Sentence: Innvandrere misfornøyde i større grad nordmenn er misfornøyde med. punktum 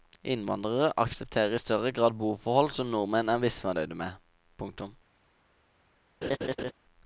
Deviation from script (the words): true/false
true